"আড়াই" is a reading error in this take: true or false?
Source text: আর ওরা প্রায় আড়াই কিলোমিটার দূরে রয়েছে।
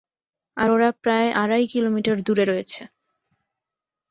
false